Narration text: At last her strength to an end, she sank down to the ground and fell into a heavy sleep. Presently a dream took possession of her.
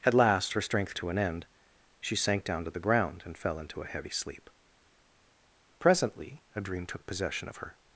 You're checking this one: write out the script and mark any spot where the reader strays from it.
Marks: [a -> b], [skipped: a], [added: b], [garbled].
At last her strength to an end, she sank down to the ground and fell into a heavy sleep. Presently a dream took possession of her.